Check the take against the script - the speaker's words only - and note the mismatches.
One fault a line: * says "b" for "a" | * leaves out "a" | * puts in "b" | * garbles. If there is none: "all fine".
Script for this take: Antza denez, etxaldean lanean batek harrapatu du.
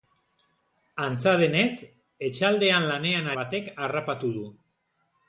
all fine